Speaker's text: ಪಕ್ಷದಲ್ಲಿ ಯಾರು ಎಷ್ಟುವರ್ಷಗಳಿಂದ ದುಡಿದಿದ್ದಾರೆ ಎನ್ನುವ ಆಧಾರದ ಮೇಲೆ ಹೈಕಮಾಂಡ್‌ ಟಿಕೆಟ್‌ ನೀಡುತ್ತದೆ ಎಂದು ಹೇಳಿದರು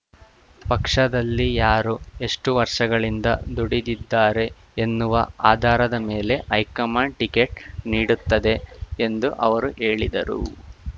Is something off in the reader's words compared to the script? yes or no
yes